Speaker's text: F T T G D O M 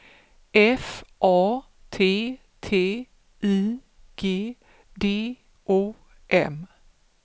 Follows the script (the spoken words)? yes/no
no